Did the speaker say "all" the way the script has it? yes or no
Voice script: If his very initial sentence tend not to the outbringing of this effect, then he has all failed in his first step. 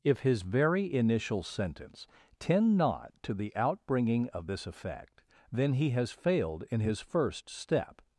no